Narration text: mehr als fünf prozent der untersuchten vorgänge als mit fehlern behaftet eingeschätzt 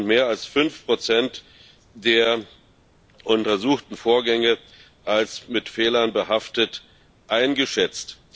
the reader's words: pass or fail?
pass